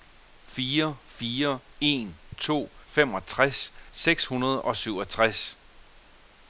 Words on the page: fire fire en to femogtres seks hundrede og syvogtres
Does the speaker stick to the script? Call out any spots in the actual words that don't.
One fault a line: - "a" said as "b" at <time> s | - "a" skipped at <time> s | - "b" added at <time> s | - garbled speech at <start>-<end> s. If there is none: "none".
none